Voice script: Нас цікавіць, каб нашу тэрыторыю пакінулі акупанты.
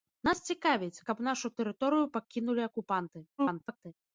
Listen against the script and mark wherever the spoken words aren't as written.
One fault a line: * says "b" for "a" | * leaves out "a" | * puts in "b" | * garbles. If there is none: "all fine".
* garbles